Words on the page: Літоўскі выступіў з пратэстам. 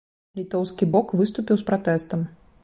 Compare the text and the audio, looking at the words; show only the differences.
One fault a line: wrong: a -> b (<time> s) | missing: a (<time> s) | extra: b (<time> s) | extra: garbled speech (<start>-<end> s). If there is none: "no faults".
extra: бок (1.0 s)